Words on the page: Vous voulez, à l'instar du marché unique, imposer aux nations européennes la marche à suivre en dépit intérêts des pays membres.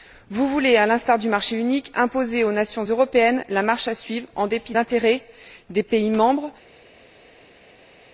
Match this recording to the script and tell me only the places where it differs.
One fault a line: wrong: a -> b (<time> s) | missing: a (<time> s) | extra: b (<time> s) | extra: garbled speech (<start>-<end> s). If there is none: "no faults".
no faults